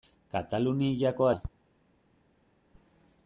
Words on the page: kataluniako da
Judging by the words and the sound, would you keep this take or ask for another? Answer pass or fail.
pass